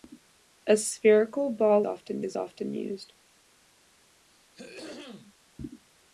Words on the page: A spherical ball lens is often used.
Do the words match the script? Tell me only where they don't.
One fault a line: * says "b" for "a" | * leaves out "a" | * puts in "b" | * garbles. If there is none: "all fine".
* says "often" for "lens"